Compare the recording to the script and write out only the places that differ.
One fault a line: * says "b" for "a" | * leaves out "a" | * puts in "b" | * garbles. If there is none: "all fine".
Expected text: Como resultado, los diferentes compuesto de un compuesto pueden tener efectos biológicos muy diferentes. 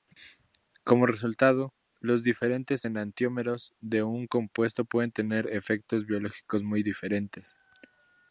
* says "enantiómeros" for "compuesto"